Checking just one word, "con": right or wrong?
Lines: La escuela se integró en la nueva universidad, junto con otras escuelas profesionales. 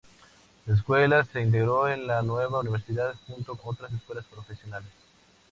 wrong